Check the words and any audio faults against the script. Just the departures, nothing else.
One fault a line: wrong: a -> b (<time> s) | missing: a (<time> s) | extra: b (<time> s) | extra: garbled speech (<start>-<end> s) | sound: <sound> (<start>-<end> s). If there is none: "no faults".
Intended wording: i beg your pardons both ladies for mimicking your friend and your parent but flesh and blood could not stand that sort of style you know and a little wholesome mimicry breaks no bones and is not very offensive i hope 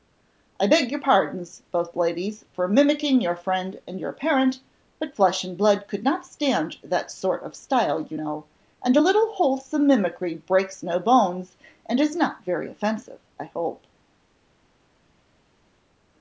no faults